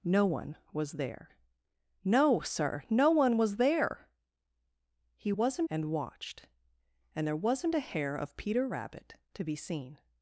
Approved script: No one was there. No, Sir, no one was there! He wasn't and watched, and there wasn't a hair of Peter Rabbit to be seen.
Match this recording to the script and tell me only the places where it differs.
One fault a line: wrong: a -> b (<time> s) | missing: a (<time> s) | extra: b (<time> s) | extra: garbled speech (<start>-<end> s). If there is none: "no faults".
no faults